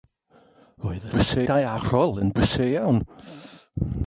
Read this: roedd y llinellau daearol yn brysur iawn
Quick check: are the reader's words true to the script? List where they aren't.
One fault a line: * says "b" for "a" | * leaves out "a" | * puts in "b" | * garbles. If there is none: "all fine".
* says "brysur" for "llinellau"